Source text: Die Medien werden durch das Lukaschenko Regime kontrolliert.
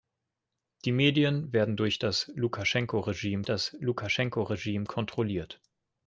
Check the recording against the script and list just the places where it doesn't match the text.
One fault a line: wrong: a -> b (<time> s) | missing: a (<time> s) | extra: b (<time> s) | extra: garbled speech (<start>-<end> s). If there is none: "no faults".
extra: das Lukaschenko Regime (3.5 s)